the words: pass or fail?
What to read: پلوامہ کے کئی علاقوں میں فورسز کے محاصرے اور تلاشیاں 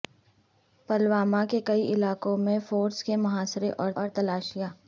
fail